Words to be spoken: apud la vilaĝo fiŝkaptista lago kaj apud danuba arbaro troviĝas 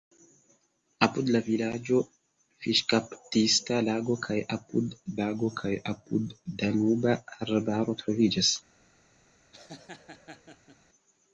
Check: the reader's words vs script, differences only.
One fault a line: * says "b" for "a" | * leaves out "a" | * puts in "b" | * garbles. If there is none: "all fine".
* puts in "lago kaj apud"